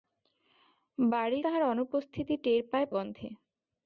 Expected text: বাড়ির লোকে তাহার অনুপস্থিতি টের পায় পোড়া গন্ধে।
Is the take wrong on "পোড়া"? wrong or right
wrong